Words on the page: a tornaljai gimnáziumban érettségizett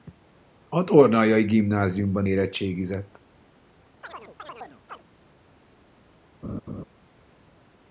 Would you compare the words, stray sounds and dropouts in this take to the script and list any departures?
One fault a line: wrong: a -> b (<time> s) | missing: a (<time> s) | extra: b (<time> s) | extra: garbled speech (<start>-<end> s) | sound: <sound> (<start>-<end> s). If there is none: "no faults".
sound: chirp (4.0-5.0 s)
sound: laugh (6.4-6.8 s)